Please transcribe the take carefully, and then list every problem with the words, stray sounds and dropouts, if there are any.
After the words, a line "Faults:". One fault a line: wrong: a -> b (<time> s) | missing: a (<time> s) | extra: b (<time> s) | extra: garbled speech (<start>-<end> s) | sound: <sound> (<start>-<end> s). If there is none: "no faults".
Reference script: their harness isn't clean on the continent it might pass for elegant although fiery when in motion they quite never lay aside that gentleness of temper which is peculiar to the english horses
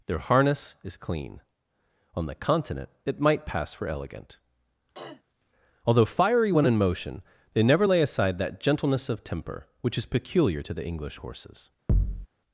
their harness is clean on the continent it might pass for elegant although fiery when in motion they never lay aside that gentleness of temper which is peculiar to the english horses
Faults:
wrong: isn't -> is (0.8 s)
sound: throat clearing (4.9-5.2 s)
missing: quite (7.6 s)
sound: thud (11.9-12.3 s)